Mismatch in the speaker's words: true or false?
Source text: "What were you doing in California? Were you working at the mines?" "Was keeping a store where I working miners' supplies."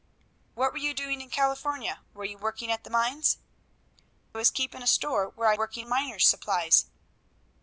false